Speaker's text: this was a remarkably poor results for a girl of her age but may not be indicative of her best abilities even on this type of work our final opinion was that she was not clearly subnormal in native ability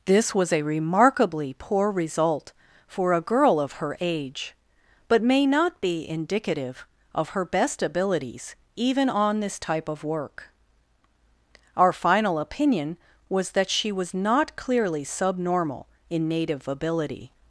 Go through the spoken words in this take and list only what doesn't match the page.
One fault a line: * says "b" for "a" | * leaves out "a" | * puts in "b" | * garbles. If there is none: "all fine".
* says "result" for "results"